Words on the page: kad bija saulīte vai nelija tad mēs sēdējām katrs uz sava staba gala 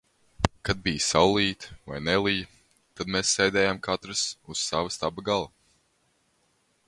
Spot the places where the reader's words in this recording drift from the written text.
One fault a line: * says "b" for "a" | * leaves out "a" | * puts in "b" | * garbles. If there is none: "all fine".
all fine